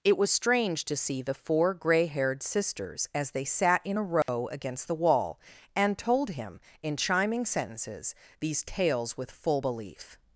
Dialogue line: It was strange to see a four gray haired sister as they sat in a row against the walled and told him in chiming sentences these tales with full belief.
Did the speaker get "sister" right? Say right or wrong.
wrong